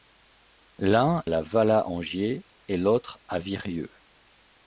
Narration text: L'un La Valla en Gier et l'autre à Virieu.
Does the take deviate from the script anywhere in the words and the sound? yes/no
no